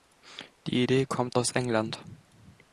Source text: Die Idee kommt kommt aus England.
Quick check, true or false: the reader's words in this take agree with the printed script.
false